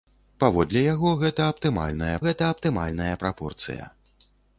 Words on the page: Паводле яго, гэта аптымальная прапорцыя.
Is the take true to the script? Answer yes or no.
no